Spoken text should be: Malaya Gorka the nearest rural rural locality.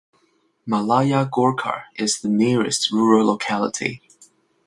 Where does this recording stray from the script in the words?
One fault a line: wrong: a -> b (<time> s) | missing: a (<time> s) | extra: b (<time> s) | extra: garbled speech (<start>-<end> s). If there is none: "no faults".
extra: is (2.0 s)
missing: rural (3.2 s)